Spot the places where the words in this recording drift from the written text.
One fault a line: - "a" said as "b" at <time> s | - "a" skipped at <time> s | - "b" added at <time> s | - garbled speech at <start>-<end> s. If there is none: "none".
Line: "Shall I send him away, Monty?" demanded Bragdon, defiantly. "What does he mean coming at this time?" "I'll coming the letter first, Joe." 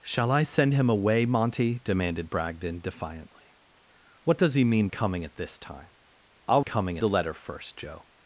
none